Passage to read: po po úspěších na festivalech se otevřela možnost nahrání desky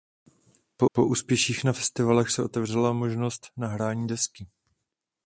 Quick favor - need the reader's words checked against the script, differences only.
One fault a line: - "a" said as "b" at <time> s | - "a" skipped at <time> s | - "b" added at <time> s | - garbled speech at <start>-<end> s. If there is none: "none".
none